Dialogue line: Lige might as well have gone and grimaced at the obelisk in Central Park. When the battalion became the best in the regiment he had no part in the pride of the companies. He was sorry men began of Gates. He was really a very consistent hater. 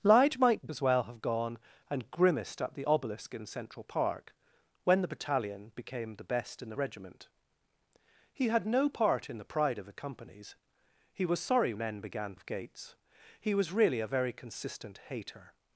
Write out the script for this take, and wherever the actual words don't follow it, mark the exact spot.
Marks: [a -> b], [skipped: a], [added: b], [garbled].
Lige might as well have gone and grimaced at the obelisk in Central Park. When the battalion became the best in the regiment he had no part in the pride of the companies. He was sorry men began of Gates. He was really a very consistent hater.